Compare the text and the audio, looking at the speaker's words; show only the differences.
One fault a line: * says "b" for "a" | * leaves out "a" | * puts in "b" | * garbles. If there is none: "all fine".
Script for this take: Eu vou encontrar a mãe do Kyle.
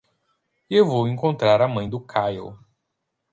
all fine